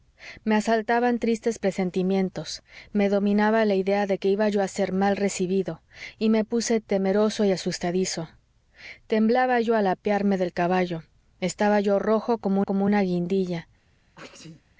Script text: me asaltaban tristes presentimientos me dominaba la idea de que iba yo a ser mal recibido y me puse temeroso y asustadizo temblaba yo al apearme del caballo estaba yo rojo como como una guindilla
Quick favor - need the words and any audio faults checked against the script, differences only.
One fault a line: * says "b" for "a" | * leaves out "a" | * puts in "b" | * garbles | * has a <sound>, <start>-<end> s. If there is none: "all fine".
* has a sneeze, 14.1-14.6 s